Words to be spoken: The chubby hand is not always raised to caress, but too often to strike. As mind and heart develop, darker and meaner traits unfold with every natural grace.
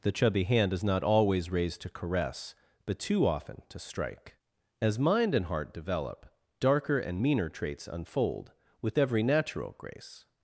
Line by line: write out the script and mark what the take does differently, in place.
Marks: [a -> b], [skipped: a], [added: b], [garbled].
The chubby hand is not always raised to caress, but too often to strike. As mind and heart develop, darker and meaner traits unfold with every natural grace.